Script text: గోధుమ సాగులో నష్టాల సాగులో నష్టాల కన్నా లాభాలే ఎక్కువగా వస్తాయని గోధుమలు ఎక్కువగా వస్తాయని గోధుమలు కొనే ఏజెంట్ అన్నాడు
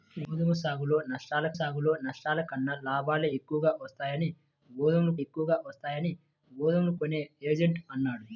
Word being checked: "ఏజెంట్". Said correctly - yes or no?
yes